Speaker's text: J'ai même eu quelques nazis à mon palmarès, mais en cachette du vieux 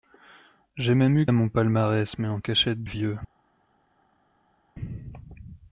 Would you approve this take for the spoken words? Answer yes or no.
no